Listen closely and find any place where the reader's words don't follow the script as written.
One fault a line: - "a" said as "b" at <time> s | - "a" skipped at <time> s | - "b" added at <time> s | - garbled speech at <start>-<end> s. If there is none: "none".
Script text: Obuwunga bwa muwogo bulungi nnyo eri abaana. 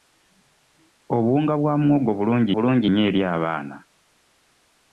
- "bulungi" added at 2.5 s